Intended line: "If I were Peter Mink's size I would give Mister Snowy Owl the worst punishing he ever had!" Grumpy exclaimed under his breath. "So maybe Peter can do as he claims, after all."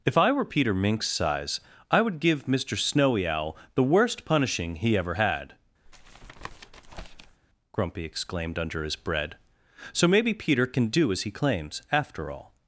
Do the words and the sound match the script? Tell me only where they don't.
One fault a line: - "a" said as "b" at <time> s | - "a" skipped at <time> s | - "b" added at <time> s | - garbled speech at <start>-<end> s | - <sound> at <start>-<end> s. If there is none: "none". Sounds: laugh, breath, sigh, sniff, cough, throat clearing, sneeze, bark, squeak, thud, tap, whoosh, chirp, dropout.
- tap at 5.9-7.4 s
- "breath" said as "bread" at 8.9 s